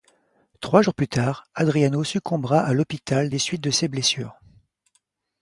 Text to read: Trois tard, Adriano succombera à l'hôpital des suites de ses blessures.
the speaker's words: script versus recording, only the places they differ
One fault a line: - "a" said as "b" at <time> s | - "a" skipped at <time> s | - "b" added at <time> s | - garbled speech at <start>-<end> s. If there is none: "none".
- "jours plus" added at 0.8 s